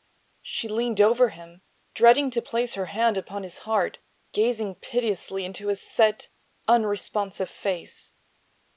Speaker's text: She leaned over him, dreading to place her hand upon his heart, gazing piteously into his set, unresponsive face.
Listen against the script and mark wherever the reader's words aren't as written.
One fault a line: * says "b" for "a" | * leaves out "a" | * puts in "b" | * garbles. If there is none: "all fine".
all fine